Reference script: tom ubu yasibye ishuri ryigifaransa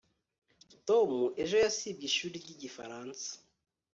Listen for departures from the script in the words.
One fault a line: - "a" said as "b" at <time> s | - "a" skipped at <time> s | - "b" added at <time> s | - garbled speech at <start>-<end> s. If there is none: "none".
- "ubu" said as "ejo" at 1.4 s